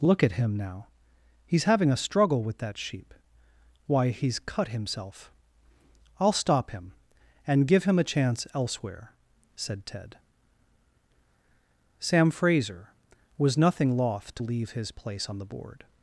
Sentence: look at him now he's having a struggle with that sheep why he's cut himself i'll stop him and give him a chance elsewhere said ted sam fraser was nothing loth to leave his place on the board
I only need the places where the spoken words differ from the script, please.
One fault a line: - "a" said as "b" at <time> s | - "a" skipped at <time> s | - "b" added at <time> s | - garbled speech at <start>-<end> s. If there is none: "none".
none